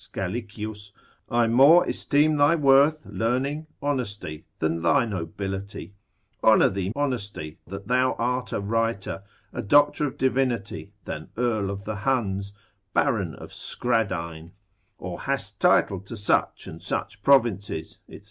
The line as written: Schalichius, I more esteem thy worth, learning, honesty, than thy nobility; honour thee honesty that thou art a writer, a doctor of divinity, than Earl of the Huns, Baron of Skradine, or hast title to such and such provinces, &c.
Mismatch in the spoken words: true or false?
false